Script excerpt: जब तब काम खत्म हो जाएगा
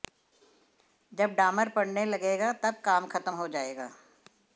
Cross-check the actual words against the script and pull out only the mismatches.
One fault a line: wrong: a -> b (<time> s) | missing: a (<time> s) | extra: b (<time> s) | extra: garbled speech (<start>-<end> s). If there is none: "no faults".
extra: डामर पड़ने लगेगा (1.3 s)